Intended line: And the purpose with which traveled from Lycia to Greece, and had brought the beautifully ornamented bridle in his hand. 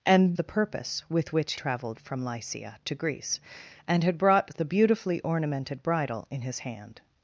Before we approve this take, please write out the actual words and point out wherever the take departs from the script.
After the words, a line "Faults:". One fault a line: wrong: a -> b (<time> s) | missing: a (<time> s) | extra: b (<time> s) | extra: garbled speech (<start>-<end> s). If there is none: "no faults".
And the purpose with which traveled from Lycia to Greece, and had brought the beautifully ornamented bridle in his hand.
Faults:
no faults